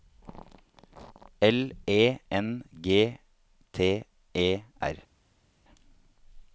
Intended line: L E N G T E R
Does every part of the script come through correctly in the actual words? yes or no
yes